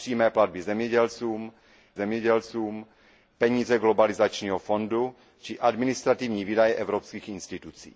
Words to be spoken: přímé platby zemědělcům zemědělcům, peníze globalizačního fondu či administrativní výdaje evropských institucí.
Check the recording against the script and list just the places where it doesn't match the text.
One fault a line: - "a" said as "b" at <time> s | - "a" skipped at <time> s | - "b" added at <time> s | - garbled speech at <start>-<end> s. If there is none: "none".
none